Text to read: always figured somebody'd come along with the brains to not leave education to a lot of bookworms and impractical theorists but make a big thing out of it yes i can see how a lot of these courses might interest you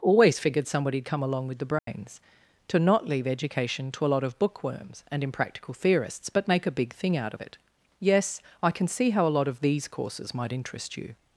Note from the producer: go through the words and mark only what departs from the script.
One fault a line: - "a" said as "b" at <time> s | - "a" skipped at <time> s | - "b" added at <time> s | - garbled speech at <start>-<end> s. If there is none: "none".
none